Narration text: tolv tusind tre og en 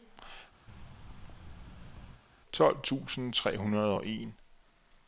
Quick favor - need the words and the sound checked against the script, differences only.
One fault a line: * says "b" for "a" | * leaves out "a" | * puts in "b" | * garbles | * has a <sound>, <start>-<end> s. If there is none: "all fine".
* has a thud, 0.7-2.2 s
* puts in "hundrede"